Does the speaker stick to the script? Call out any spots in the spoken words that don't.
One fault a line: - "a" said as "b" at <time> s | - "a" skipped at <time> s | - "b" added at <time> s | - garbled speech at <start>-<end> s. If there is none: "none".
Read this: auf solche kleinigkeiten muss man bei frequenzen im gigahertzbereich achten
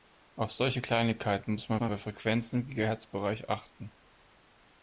- "man" added at 1.8 s